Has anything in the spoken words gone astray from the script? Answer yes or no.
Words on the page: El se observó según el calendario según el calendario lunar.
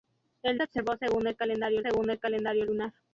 no